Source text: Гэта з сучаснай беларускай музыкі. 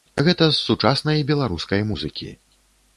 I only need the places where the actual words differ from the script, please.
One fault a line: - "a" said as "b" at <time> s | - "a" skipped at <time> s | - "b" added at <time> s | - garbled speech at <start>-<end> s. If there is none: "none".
none